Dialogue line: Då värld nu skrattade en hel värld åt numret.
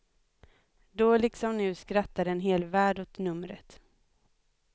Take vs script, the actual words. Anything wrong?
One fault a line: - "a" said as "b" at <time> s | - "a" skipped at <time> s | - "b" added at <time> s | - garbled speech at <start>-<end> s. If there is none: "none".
- "värld" said as "liksom" at 1.2 s